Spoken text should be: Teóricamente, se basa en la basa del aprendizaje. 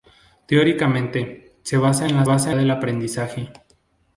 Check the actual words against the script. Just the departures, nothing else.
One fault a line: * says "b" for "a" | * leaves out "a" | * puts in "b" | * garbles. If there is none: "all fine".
all fine